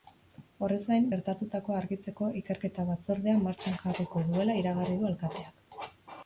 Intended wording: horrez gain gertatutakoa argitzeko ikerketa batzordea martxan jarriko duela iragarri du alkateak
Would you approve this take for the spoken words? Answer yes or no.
yes